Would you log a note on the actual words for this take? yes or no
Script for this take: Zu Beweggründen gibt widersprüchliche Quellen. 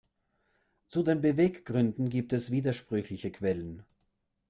yes